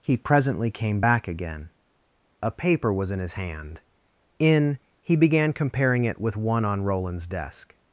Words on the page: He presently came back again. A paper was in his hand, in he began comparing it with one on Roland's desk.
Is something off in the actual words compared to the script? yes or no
no